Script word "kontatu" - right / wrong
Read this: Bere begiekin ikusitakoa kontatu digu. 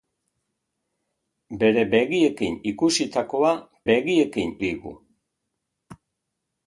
wrong